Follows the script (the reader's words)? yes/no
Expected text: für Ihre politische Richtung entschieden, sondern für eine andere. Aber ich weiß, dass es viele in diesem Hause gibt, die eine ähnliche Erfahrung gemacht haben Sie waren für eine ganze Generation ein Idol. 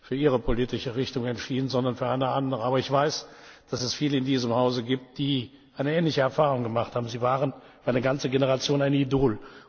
yes